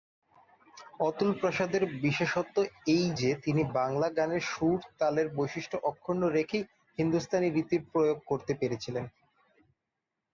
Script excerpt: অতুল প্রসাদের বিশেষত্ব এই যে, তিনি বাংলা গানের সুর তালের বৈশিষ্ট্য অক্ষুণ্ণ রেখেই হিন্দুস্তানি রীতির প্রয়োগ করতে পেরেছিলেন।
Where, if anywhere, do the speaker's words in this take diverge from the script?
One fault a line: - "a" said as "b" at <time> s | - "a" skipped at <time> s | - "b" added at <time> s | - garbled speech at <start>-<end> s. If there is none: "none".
none